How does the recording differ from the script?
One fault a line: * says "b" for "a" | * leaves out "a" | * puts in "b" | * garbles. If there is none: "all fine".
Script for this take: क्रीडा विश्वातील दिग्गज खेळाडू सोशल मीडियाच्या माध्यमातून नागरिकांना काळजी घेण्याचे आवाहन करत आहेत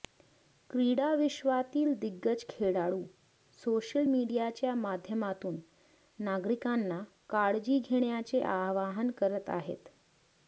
all fine